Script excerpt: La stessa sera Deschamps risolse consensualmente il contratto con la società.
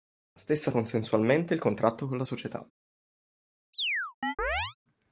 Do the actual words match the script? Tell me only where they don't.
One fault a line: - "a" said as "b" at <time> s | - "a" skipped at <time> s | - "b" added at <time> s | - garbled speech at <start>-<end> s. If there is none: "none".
- "sera Deschamps risolse" skipped at 0.7 s